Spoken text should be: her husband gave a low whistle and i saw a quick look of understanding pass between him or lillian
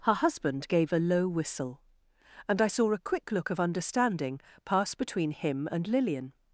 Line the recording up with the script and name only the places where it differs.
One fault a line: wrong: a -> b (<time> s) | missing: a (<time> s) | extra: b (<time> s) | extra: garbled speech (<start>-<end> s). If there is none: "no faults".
wrong: or -> and (5.7 s)